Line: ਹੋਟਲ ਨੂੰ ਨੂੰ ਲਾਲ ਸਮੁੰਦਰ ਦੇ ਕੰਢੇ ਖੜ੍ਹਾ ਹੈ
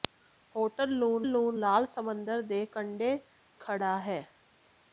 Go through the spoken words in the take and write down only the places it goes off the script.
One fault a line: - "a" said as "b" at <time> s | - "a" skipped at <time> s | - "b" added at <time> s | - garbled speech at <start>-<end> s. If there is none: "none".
none